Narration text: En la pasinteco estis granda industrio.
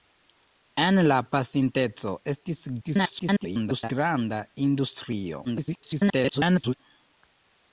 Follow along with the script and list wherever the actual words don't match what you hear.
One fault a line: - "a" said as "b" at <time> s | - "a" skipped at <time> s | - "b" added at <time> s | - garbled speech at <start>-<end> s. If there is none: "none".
- garbled speech at 2.8-3.9 s
- garbled speech at 5.4-6.7 s